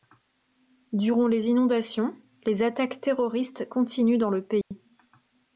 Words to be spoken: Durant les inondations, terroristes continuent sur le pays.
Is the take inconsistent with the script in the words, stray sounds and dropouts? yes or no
yes